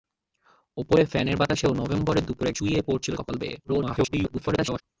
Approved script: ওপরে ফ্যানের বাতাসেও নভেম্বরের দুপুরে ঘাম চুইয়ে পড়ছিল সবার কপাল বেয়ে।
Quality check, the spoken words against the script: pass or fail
fail